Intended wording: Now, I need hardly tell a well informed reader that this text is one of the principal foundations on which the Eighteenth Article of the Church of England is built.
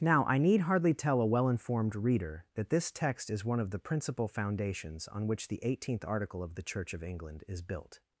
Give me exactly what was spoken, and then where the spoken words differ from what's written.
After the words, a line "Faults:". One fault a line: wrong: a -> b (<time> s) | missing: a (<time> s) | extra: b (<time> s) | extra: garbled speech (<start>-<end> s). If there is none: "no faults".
Now, I need hardly tell a well informed reader that this text is one of the principal foundations on which the Eighteenth Article of the Church of England is built.
Faults:
no faults